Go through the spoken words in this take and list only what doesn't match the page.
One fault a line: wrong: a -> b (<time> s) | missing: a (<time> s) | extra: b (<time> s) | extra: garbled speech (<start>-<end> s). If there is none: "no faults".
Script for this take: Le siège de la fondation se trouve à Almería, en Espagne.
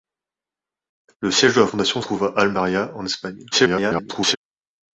missing: se (2.0 s)
extra: garbled speech (3.5-4.4 s)